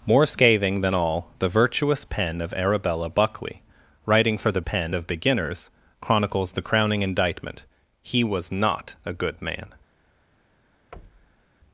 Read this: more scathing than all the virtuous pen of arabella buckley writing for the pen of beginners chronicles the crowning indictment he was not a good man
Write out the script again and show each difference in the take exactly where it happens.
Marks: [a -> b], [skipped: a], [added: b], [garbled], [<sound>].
more scathing than all the virtuous pen of arabella buckley writing for the pen of beginners chronicles the crowning indictment he was not a good man [thud]